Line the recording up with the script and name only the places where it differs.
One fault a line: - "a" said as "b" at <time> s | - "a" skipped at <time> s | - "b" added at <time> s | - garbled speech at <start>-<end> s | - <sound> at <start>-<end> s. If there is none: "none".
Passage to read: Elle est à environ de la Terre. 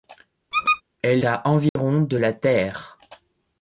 - squeak at 0.5-0.8 s
- "est" skipped at 1.2 s
- dropout at 1.7-1.8 s